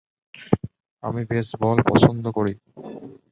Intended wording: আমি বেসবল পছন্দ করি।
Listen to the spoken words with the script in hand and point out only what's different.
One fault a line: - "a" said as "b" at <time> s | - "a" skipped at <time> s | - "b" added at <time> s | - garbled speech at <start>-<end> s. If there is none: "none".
none